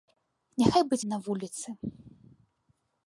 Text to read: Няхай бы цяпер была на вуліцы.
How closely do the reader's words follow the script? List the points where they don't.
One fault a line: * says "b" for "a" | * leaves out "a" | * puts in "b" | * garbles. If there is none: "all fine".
* leaves out "цяпер была"